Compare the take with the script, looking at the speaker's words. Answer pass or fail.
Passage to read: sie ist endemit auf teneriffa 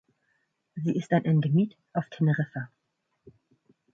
fail